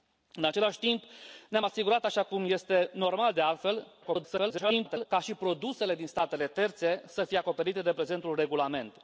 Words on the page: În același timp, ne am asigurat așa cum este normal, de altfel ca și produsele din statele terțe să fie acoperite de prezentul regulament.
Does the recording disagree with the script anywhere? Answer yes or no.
yes